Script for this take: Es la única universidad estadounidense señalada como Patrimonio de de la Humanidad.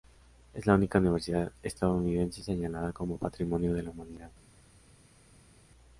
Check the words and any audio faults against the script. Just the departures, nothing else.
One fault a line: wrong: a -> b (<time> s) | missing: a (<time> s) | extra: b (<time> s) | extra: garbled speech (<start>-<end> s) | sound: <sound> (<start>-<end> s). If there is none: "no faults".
missing: de (3.8 s)